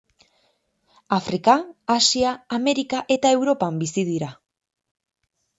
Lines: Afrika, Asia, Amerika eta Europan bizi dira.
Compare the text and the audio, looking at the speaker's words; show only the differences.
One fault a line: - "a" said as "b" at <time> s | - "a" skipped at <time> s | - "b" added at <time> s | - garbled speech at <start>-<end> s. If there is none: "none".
none